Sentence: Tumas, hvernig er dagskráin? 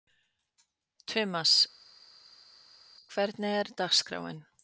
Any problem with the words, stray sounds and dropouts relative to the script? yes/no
no